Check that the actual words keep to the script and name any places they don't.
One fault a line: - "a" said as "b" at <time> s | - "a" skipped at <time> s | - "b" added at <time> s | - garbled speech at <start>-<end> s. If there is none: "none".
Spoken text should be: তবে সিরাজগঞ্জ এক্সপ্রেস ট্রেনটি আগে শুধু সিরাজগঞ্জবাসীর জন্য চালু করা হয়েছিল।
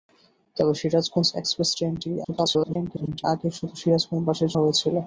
- garbled speech at 2.2-3.2 s
- "জন্য চালু করা" skipped at 4.5 s